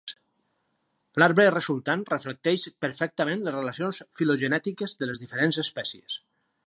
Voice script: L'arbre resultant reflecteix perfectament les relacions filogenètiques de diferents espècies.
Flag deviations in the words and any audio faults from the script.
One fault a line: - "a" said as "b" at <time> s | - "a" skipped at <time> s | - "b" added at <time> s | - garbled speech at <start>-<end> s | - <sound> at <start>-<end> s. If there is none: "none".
- "les" added at 5.1 s